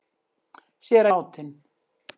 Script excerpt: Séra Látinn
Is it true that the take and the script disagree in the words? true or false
false